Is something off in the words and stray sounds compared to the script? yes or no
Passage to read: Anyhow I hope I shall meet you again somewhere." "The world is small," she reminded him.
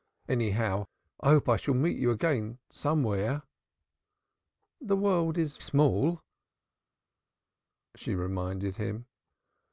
no